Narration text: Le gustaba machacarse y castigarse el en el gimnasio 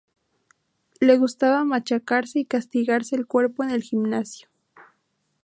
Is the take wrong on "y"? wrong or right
right